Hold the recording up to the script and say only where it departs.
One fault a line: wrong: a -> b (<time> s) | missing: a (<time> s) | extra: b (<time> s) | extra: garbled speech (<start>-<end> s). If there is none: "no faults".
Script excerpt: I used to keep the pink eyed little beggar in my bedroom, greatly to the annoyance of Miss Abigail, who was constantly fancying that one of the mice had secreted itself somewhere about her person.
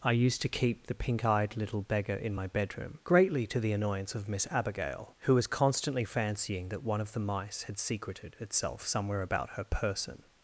no faults